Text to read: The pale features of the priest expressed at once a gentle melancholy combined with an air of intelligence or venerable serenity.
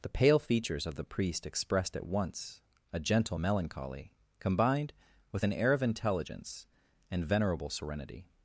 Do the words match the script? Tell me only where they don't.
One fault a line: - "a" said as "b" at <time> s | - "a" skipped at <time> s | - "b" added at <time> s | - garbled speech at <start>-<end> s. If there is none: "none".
- "or" said as "and" at 7.1 s